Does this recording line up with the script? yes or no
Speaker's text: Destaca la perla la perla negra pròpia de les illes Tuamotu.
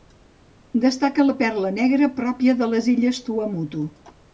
no